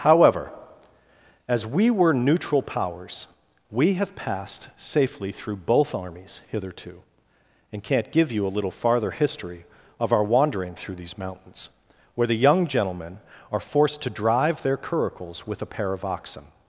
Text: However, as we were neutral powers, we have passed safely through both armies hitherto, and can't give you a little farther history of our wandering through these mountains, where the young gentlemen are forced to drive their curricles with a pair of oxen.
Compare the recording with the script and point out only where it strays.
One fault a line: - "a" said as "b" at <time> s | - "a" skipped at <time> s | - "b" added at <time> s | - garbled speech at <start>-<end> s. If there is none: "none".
none